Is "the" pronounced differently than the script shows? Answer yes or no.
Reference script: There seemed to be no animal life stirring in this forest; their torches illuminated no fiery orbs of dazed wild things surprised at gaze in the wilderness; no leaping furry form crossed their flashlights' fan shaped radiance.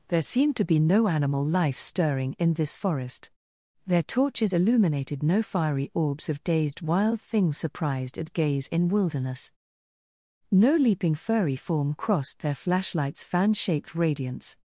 yes